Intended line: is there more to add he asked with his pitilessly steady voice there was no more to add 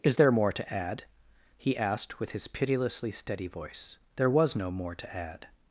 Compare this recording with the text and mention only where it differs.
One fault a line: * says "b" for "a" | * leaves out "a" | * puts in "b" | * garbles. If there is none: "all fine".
all fine